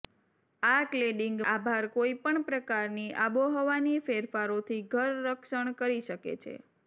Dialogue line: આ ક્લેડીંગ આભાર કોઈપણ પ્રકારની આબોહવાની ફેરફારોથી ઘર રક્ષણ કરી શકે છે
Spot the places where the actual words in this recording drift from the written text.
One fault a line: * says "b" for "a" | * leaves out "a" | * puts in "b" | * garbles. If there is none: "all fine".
all fine